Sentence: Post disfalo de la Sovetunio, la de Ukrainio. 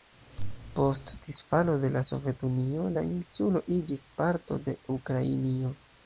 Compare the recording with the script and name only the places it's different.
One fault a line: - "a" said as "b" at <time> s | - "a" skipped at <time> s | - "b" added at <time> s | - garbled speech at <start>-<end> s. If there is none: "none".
- "insulo iĝis parto" added at 3.1 s